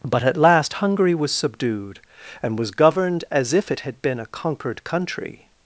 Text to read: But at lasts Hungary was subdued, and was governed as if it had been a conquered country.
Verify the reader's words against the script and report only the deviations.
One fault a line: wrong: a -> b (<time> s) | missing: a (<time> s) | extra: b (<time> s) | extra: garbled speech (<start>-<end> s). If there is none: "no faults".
wrong: lasts -> last (0.3 s)